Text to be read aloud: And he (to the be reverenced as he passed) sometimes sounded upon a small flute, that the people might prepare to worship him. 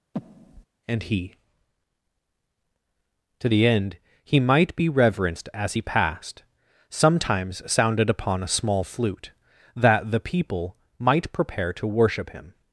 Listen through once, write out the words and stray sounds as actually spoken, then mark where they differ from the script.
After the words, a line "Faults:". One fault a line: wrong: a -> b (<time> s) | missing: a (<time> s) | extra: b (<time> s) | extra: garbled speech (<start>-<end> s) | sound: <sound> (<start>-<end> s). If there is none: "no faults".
And he (to the end he might be reverenced as he passed) sometimes sounded upon a small flute, that the people might prepare to worship him.
Faults:
sound: breath (0.1-0.7 s)
extra: end he might (3.7 s)